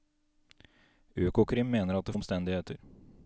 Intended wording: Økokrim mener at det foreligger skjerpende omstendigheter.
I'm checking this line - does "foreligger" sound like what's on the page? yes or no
no